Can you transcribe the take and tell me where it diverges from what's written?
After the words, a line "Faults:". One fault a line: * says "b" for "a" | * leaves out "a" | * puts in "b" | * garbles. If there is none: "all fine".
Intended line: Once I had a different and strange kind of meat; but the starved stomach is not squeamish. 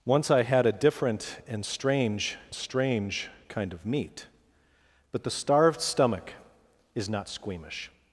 Once I had a different and strange strange kind of meat; but the starved stomach is not squeamish.
Faults:
* puts in "strange"